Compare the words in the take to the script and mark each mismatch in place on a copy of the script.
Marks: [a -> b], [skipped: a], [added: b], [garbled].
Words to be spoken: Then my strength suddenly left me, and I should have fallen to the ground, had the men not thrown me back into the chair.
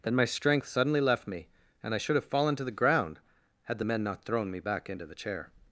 Then my strength suddenly left me, and I should have fallen to the ground, had the men not thrown me back into the chair.